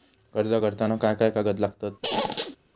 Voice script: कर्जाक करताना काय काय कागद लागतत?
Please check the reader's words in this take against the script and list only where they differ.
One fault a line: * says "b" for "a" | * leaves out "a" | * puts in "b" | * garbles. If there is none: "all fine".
all fine